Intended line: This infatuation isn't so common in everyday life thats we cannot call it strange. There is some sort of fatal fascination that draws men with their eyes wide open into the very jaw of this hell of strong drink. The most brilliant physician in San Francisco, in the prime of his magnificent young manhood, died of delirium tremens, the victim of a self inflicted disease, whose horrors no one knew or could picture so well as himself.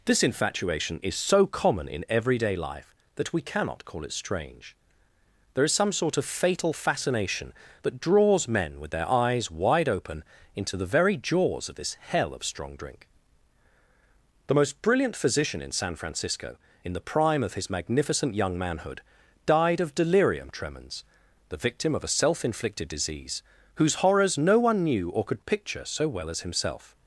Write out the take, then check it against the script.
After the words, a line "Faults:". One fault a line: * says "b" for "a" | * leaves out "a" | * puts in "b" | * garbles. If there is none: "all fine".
This infatuation is so common in everyday life that we cannot call it strange. There is some sort of fatal fascination that draws men with their eyes wide open into the very jaws of this hell of strong drink. The most brilliant physician in San Francisco, in the prime of his magnificent young manhood, died of delirium tremens, the victim of a self inflicted disease, whose horrors no one knew or could picture so well as himself.
Faults:
* says "is" for "isn't"
* says "that" for "thats"
* says "jaws" for "jaw"